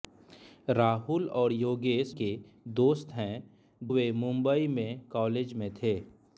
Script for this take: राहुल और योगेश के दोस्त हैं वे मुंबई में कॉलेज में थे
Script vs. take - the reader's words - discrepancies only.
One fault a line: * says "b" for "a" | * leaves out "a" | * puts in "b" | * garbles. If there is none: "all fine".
all fine